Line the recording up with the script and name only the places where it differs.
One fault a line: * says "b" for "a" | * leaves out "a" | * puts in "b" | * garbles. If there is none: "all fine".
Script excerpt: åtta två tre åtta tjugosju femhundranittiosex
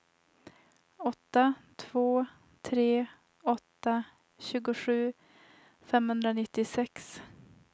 all fine